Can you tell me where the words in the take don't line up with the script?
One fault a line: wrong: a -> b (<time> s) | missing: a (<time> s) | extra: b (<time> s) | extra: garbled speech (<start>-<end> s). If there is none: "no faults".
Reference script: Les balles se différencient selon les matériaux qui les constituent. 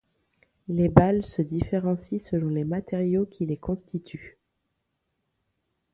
no faults